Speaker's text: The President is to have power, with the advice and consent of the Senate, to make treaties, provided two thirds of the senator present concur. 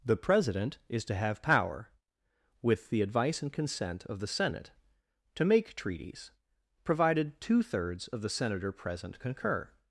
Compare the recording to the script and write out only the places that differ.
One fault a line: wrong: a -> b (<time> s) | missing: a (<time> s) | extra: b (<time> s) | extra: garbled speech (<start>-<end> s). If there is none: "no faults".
no faults